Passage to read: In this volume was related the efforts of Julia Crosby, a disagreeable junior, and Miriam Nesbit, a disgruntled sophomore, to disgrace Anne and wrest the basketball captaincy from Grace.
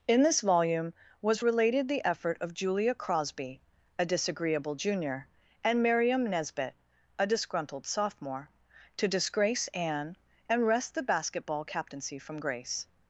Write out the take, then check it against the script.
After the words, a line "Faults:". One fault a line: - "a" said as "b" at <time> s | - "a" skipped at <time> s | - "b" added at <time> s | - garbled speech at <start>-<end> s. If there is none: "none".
In this volume was related the effort of Julia Crosby, a disagreeable junior, and Miriam Nesbit, a disgruntled sophomore, to disgrace Anne and wrest the basketball captaincy from Grace.
Faults:
- "efforts" said as "effort" at 2.1 s